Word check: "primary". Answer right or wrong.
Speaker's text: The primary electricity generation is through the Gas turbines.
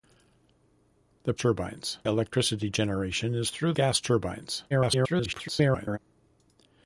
wrong